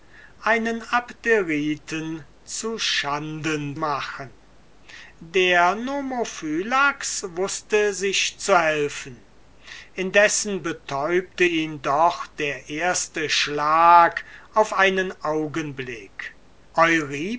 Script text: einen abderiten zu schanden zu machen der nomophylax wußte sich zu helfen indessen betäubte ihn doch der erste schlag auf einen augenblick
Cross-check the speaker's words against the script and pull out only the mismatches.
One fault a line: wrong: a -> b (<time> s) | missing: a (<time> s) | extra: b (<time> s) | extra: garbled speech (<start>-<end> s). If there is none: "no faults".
missing: zu (3.8 s)